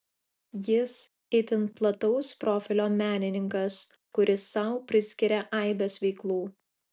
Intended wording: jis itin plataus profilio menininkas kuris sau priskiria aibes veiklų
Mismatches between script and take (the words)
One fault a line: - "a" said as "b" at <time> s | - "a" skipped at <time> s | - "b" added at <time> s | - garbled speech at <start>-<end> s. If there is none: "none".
none